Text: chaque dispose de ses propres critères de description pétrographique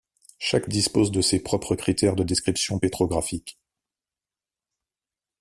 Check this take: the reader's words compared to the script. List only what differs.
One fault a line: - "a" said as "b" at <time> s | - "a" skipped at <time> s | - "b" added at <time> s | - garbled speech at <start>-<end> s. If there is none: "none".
none